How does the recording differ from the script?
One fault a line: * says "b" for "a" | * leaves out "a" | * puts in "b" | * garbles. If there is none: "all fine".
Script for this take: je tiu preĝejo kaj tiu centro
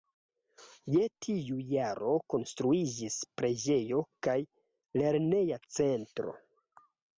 * puts in "jaro konstruiĝis"
* says "lerneja" for "tiu"